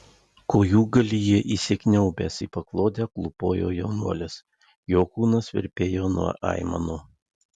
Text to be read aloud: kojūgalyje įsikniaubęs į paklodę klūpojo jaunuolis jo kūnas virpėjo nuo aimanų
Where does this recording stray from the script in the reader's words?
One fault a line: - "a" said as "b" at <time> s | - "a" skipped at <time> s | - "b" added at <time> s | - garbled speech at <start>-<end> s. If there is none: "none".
none